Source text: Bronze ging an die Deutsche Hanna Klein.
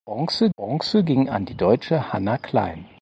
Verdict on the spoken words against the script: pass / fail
fail